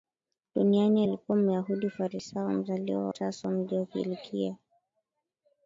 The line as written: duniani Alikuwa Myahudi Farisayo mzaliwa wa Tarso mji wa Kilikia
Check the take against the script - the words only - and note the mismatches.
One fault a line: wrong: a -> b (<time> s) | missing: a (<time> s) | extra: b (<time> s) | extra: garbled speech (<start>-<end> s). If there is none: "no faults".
missing: wa (3.1 s)